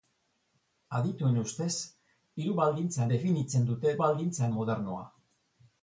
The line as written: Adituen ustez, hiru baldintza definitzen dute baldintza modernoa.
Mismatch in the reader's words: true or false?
false